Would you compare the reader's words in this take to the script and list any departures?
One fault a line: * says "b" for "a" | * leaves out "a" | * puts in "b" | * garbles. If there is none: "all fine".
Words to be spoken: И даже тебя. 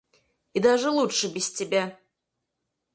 * puts in "лучше без"